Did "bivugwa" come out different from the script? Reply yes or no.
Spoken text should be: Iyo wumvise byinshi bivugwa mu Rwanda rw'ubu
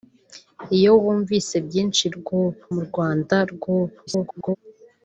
yes